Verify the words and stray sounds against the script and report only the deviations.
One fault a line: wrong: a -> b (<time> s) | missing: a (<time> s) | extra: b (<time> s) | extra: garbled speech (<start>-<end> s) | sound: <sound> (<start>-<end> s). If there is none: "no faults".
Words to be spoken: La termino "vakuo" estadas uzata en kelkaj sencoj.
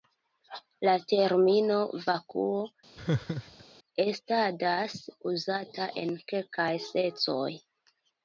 sound: laugh (3.0-3.6 s)